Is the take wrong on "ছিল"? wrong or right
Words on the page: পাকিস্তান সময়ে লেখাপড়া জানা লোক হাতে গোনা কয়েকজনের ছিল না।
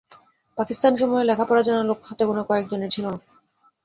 right